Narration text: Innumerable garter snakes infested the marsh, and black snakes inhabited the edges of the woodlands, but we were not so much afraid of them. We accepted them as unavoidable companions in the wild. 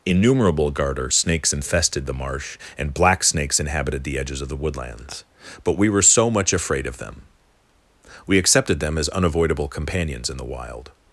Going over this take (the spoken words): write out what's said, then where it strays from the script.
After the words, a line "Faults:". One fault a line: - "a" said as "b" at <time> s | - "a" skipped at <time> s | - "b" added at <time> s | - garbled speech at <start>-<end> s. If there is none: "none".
Innumerable garter snakes infested the marsh, and black snakes inhabited the edges of the woodlands, but we were so much afraid of them. We accepted them as unavoidable companions in the wild.
Faults:
- "not" skipped at 6.0 s